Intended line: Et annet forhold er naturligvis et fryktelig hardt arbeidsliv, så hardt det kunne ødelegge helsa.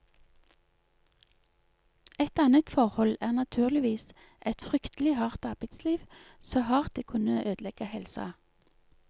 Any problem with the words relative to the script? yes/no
no